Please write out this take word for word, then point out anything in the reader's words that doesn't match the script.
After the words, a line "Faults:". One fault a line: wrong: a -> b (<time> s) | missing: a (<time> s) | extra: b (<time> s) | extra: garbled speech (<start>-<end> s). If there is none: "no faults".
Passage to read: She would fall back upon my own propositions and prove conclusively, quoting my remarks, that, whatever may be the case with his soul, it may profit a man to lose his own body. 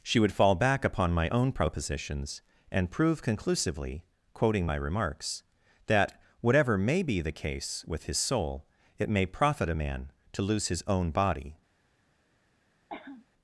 She would fall back upon my own propositions and prove conclusively, quoting my remarks, that, whatever may be the case with his soul, it may profit a man to lose his own body.
Faults:
no faults